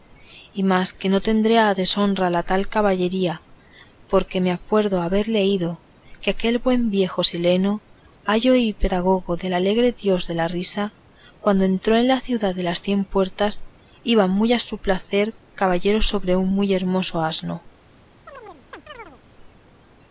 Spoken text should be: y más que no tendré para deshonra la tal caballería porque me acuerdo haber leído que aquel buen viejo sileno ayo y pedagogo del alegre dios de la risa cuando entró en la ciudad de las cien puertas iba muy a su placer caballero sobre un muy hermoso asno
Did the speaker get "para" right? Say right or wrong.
wrong